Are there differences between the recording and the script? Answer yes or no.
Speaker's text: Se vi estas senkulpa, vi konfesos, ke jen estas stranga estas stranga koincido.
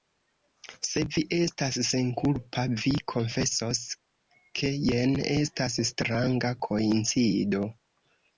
yes